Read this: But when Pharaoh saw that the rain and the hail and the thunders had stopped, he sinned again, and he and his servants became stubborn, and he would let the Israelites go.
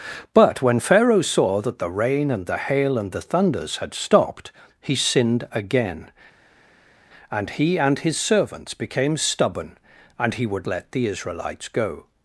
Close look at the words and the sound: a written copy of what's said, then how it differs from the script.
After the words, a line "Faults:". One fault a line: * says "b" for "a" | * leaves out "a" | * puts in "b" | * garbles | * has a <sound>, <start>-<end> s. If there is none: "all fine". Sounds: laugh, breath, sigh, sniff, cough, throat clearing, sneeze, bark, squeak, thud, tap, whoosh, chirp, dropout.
But when Pharaoh saw that the rain and the hail and the thunders had stopped, he sinned again, and he and his servants became stubborn, and he would let the Israelites go.
Faults:
all fine